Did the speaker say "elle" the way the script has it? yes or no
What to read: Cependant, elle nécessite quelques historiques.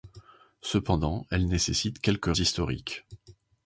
yes